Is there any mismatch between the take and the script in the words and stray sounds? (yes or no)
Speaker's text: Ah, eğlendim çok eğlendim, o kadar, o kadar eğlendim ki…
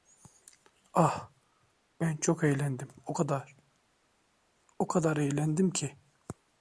yes